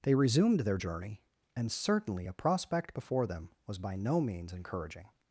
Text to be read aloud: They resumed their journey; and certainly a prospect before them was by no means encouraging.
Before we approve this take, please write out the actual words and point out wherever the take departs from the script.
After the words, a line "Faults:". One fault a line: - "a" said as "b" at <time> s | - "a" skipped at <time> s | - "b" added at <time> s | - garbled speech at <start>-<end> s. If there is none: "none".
They resumed their journey; and certainly a prospect before them was by no means encouraging.
Faults:
none